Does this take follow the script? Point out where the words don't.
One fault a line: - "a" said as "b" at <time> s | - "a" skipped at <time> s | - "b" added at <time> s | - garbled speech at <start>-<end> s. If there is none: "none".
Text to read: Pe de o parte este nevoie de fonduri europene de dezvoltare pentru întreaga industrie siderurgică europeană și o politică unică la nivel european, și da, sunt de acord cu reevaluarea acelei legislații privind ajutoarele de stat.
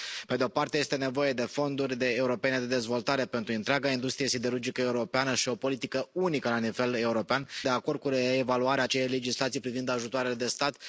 - "și da sunt" skipped at 7.5 s